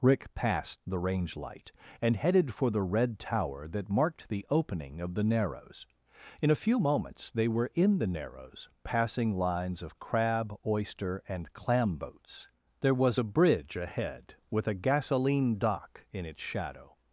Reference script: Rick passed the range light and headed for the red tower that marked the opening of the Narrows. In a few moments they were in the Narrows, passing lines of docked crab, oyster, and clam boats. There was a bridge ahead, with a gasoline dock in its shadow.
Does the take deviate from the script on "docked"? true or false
true